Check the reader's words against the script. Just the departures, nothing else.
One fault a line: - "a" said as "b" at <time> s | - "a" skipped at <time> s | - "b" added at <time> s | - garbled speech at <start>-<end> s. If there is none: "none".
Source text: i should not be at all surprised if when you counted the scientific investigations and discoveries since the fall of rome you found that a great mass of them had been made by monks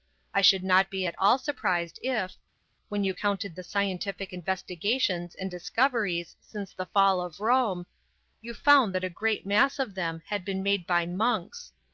none